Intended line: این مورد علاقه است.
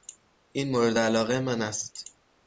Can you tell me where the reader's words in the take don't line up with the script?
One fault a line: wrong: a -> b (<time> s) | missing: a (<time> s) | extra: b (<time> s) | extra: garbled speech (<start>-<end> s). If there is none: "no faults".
extra: من (1.4 s)